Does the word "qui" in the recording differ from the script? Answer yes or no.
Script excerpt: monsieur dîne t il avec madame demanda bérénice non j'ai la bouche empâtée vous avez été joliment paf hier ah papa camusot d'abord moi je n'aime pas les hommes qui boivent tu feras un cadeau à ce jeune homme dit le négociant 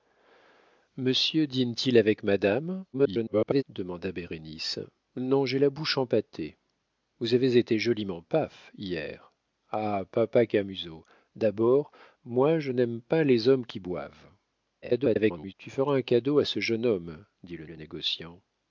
no